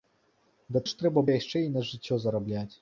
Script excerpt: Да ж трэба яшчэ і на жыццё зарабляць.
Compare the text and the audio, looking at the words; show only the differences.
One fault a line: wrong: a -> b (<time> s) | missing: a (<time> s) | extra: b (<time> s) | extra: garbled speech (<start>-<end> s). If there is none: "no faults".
no faults